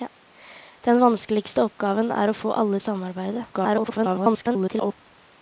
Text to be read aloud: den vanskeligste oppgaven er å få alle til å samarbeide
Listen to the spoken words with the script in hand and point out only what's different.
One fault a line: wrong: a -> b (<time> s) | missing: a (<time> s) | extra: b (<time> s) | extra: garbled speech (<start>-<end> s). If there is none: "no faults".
missing: til (2.8 s)
extra: garbled speech (3.5-4.9 s)